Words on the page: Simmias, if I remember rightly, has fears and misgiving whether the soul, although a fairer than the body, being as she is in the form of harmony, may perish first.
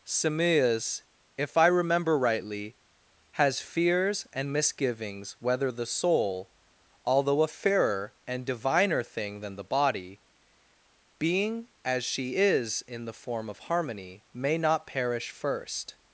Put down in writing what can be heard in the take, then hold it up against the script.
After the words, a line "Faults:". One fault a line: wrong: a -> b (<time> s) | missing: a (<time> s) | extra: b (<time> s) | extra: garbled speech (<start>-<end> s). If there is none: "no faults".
Simmias, if I remember rightly, has fears and misgivings whether the soul, although a fairer and diviner thing than the body, being as she is in the form of harmony, may not perish first.
Faults:
wrong: misgiving -> misgivings (4.5 s)
extra: and diviner thing (8.3 s)
extra: not (14.6 s)